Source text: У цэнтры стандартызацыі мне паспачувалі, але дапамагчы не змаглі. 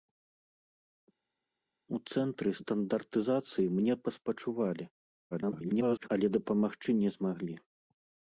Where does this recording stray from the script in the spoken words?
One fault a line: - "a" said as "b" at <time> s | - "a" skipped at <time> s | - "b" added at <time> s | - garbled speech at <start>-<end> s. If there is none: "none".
- garbled speech at 5.3-6.1 s